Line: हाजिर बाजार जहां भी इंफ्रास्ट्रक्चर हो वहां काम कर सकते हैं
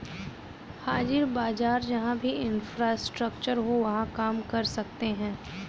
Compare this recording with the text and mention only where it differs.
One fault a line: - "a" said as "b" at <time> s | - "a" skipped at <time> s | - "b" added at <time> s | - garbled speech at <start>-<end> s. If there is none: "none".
none